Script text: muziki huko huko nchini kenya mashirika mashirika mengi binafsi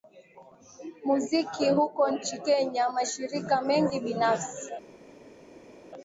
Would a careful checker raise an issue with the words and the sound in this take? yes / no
yes